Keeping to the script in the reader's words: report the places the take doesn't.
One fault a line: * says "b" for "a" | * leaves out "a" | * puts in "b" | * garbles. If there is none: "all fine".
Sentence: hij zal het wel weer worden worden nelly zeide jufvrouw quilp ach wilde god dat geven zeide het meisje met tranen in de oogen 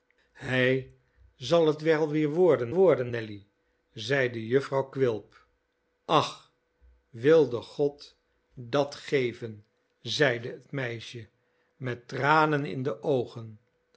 all fine